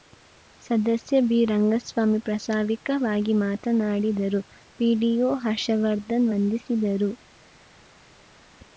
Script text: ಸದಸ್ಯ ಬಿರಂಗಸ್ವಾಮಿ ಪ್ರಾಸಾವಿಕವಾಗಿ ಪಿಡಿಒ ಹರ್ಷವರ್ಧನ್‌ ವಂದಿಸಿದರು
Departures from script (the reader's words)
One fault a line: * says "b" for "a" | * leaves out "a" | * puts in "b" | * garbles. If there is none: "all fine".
* puts in "ಮಾತನಾಡಿದರು"